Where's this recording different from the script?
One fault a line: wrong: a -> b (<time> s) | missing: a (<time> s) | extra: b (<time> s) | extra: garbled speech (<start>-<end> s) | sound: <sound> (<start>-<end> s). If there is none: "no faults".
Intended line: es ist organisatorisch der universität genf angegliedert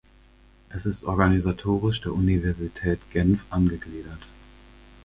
no faults